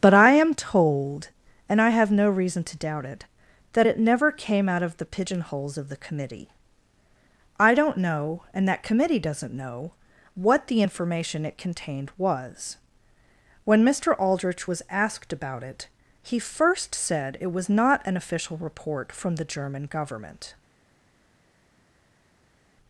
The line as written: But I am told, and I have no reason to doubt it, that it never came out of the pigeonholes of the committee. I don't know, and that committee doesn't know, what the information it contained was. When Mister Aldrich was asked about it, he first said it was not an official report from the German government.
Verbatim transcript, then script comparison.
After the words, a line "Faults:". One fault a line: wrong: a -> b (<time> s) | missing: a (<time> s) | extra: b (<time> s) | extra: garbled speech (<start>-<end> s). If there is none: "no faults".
But I am told, and I have no reason to doubt it, that it never came out of the pigeonholes of the committee. I don't know, and that committee doesn't know, what the information it contained was. When Mister Aldrich was asked about it, he first said it was not an official report from the German government.
Faults:
no faults